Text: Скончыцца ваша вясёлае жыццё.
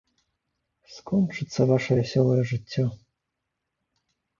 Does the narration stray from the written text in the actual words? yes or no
no